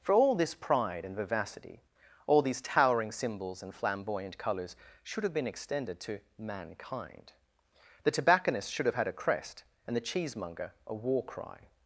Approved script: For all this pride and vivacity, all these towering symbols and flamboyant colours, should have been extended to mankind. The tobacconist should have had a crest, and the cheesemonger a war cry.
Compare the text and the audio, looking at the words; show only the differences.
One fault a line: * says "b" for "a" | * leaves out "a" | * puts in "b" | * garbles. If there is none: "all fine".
all fine